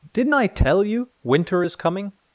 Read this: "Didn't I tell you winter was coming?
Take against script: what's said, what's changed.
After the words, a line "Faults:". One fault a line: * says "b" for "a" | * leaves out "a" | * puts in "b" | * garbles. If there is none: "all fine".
"Didn't I tell you winter is coming?
Faults:
* says "is" for "was"